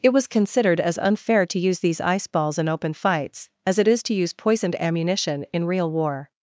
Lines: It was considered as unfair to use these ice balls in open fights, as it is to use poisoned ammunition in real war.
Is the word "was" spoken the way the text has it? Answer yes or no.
yes